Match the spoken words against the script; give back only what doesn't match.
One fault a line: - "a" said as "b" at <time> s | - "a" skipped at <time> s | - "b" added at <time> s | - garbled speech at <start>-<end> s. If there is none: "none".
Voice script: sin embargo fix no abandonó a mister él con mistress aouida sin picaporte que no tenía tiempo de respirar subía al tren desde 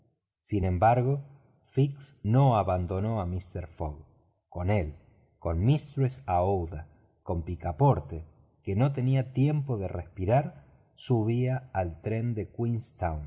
- "fogg con" added at 3.7 s
- "sin" said as "con" at 7.2 s
- "desde" said as "de" at 12.3 s